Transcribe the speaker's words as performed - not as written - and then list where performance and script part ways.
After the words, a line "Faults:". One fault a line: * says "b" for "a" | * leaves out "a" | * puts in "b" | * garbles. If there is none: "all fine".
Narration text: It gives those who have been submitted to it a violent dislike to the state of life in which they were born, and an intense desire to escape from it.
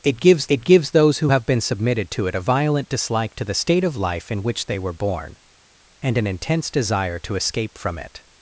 It gives it gives those who have been submitted to it a violent dislike to the state of life in which they were born, and an intense desire to escape from it.
Faults:
* puts in "it gives"